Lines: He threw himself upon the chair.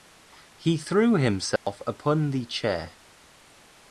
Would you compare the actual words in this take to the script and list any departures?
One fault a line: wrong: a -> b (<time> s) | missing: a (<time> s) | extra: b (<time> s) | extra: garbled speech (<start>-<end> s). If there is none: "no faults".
no faults